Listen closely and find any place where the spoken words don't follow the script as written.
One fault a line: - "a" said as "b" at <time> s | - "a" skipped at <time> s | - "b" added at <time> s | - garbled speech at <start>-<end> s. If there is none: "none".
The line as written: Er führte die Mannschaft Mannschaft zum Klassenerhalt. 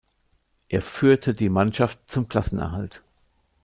- "Mannschaft" skipped at 2.0 s